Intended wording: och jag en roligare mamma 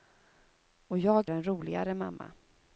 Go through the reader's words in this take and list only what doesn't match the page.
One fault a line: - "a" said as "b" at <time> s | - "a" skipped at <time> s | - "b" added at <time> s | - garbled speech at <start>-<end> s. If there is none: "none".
none